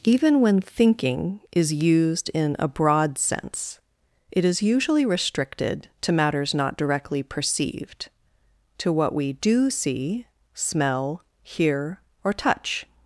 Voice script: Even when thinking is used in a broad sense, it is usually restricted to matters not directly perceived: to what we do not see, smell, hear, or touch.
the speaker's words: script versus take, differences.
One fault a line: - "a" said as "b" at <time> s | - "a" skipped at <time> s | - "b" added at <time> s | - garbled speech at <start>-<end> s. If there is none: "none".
- "not" skipped at 9.7 s